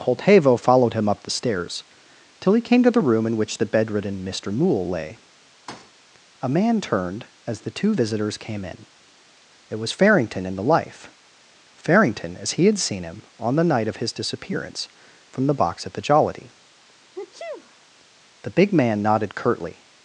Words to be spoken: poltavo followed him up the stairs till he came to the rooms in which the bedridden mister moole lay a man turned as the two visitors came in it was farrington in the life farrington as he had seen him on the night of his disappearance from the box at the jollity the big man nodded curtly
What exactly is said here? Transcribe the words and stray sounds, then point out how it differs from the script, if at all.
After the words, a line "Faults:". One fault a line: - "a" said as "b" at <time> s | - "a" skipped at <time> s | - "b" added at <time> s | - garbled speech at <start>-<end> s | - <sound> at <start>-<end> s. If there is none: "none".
poltavo followed him up the stairs till he came to the room in which the bedridden mister moole lay a man turned as the two visitors came in it was farrington in the life farrington as he had seen him on the night of his disappearance from the box at the jollity the big man nodded curtly
Faults:
- "rooms" said as "room" at 3.0 s
- thud at 5.7-5.9 s
- sneeze at 17.2-17.9 s